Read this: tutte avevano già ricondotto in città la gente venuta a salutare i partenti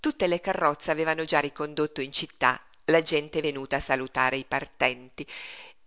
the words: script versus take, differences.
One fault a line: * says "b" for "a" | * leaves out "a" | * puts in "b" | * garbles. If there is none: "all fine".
* puts in "le carrozze"